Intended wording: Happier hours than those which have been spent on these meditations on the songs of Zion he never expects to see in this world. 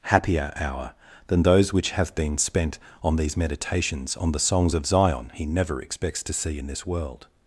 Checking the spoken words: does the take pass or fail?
fail